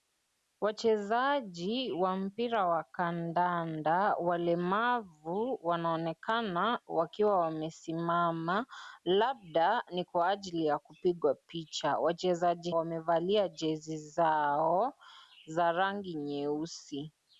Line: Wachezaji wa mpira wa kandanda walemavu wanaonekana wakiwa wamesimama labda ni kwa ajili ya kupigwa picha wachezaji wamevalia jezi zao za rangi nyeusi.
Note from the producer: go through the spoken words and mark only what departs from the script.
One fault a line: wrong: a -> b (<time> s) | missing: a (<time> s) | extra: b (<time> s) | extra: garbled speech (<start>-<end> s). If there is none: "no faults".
no faults